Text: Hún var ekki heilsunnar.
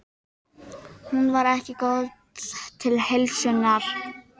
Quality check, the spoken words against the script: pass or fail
fail